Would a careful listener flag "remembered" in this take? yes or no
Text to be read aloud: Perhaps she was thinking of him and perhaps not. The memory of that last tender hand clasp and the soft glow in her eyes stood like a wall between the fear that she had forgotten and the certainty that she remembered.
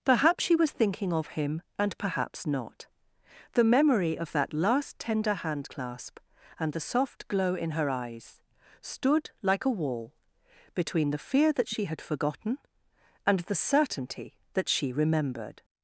no